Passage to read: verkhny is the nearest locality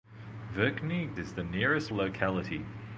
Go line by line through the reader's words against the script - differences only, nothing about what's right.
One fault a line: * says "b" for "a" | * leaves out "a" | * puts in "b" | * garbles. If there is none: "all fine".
all fine